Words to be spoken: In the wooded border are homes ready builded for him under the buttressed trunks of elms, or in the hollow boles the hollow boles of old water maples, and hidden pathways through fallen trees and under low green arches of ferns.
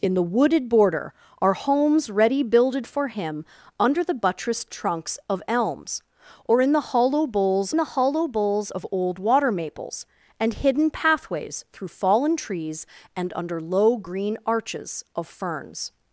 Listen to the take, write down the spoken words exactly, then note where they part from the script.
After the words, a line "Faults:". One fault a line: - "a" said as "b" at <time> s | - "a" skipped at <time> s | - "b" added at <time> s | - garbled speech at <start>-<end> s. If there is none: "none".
In the wooded border are homes ready builded for him under the buttressed trunks of elms, or in the hollow boles the hollow boles of old water maples, and hidden pathways through fallen trees and under low green arches of ferns.
Faults:
none